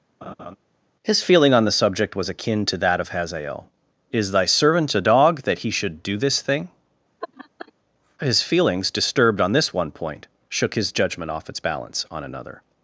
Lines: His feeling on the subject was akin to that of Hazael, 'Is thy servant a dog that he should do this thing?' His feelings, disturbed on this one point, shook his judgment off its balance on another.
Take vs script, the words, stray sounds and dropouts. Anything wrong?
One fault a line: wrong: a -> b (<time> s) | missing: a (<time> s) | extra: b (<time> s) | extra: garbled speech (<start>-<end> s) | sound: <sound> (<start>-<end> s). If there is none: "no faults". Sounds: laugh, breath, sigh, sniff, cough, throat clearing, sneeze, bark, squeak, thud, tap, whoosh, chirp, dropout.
sound: laugh (0.2-0.6 s)
sound: laugh (7.2-7.7 s)